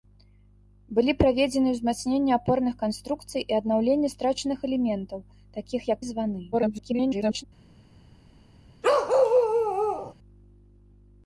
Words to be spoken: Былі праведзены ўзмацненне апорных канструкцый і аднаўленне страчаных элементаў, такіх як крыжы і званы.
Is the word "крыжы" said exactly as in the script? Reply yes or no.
no